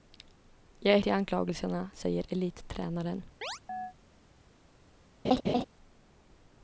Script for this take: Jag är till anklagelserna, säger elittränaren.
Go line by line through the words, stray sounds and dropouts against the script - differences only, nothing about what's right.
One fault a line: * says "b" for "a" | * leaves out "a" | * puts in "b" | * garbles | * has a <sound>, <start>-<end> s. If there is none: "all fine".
* has a chirp, 3.4-3.9 s
* has a laugh, 5.2-5.6 s